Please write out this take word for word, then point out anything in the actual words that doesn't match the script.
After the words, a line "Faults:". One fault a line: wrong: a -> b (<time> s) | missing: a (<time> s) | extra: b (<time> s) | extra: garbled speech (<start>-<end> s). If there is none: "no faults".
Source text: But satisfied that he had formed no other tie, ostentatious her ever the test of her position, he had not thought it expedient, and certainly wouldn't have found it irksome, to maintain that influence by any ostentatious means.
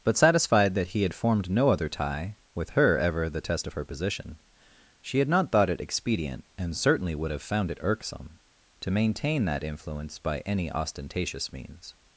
But satisfied that he had formed no other tie, with her ever the test of her position, she had not thought it expedient, and certainly would have found it irksome, to maintain that influence by any ostentatious means.
Faults:
wrong: ostentatious -> with (2.6 s)
wrong: he -> she (5.0 s)
wrong: wouldn't -> would (7.1 s)